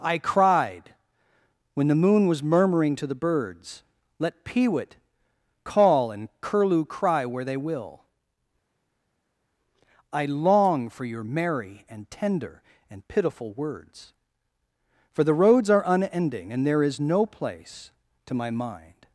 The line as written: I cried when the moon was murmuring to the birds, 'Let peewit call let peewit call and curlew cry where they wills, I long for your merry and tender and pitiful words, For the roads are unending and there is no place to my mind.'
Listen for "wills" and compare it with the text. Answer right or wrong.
wrong